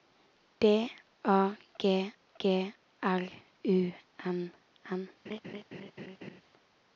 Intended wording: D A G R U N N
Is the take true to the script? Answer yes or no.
no